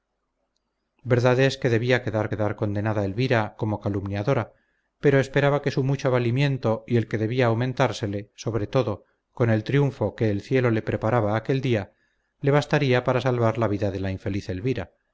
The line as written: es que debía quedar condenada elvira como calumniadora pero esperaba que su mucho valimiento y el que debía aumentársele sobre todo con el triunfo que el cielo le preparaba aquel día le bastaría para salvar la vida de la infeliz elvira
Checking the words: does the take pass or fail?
fail